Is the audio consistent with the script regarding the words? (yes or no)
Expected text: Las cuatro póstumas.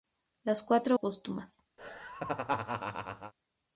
yes